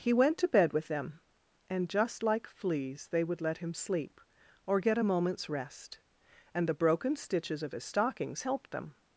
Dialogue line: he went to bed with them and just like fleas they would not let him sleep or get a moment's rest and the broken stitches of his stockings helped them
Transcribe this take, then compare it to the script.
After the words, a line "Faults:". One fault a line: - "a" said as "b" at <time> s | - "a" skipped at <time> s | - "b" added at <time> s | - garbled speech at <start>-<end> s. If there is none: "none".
he went to bed with them and just like fleas they would let him sleep or get a moment's rest and the broken stitches of his stockings helped them
Faults:
- "not" skipped at 3.4 s